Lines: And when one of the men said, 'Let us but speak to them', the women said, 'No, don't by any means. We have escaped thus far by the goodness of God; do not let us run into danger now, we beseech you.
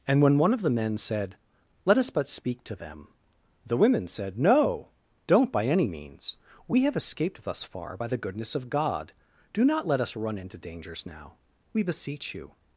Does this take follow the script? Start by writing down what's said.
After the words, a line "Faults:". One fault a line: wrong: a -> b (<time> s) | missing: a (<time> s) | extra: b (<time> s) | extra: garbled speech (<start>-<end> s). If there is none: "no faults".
And when one of the men said, 'Let us but speak to them', the women said, 'No, don't by any means. We have escaped thus far by the goodness of God; do not let us run into dangers now, we beseech you.
Faults:
wrong: danger -> dangers (10.6 s)